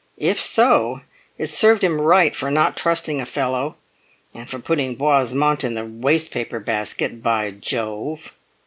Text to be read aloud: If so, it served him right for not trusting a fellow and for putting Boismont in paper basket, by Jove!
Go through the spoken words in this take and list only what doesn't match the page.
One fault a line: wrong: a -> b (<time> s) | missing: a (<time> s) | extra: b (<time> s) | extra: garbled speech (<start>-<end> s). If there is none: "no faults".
extra: the waste (5.7 s)